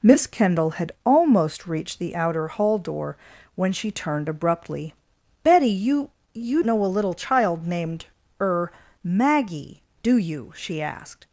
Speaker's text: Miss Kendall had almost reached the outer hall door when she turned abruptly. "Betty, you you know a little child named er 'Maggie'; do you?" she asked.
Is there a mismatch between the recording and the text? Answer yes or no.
no